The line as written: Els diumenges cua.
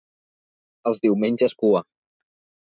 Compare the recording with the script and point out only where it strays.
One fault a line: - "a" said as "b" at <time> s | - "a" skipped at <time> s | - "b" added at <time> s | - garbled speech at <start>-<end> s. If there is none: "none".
none